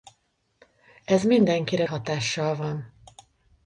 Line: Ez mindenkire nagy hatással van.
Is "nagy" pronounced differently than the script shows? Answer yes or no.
yes